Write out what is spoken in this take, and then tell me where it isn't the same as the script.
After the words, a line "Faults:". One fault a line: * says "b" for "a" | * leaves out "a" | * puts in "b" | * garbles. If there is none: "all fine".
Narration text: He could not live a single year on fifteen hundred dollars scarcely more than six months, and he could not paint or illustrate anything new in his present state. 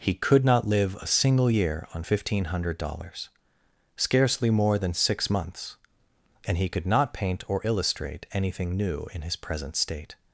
He could not live a single year on fifteen hundred dollars scarcely more than six months, and he could not paint or illustrate anything new in his present state.
Faults:
all fine